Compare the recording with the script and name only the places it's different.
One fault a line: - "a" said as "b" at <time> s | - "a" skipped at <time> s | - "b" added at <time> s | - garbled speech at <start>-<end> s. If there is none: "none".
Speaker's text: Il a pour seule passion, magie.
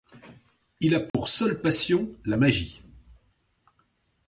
- "la" added at 2.2 s